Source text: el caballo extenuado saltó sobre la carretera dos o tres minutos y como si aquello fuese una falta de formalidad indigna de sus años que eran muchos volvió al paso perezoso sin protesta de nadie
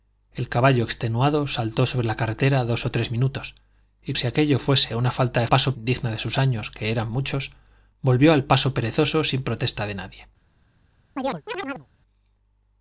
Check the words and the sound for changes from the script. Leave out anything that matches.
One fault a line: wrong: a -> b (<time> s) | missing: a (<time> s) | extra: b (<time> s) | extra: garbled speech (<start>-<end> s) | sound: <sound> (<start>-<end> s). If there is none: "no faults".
missing: como (4.2 s)
wrong: formalidad -> paso (5.4 s)
sound: chirp (11.2-11.9 s)